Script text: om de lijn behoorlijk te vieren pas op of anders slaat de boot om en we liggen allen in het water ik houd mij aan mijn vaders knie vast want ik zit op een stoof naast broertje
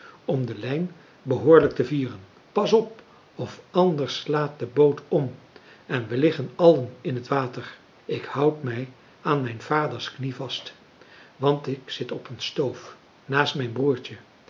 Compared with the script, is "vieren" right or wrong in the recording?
right